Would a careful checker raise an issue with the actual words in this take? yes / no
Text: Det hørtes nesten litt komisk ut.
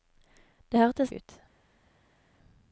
yes